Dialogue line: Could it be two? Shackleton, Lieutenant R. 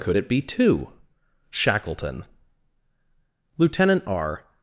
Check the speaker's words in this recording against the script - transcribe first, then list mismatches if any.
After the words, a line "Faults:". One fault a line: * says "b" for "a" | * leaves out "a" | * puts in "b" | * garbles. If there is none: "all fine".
Could it be two? Shackleton, Lieutenant R.
Faults:
all fine